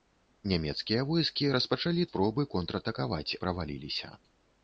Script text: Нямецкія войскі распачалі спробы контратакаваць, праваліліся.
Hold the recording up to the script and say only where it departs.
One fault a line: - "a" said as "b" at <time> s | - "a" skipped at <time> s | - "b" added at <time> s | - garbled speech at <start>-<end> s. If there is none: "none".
none